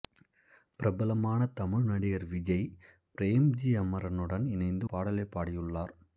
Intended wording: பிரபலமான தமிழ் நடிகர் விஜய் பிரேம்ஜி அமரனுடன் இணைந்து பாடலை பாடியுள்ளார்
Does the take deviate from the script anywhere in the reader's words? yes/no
no